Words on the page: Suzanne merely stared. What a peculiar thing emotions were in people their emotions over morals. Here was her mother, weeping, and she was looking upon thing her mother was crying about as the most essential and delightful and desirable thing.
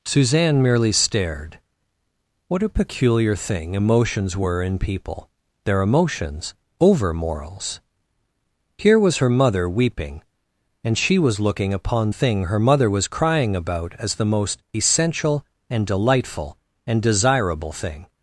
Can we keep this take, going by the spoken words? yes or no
yes